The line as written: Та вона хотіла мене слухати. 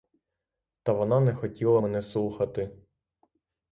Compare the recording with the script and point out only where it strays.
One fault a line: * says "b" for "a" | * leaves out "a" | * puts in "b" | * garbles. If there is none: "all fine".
* puts in "не"